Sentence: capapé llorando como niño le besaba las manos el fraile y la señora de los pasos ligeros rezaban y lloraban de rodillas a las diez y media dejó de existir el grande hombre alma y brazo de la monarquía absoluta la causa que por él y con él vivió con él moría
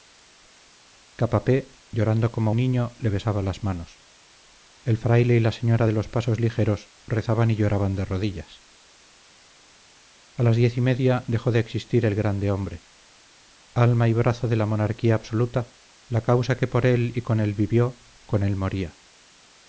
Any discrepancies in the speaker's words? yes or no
no